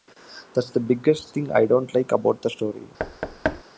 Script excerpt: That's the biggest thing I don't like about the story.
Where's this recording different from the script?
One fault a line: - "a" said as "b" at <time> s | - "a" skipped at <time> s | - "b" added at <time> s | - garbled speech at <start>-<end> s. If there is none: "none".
none